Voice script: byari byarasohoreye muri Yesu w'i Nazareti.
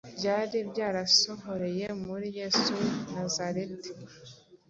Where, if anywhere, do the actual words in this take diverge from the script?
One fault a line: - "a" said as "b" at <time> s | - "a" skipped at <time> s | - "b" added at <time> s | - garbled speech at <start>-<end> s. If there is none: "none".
none